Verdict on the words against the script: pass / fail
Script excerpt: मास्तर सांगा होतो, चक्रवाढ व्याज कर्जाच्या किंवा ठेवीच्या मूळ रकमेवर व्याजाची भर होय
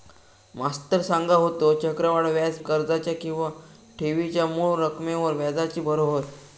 pass